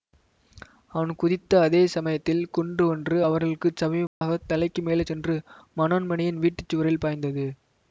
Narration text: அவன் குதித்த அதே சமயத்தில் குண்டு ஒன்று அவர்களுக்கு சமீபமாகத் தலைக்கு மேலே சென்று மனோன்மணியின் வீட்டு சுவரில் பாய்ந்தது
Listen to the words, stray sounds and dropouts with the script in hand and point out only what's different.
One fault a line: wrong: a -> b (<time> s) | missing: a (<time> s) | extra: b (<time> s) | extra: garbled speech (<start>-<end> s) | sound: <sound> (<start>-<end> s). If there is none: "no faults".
sound: dropout (4.1-4.2 s)